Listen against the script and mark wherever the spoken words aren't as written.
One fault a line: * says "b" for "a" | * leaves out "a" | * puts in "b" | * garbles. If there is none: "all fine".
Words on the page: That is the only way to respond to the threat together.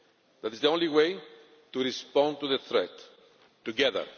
all fine